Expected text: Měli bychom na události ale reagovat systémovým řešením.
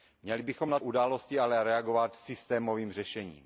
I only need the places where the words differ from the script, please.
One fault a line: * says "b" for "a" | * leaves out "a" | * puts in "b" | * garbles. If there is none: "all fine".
all fine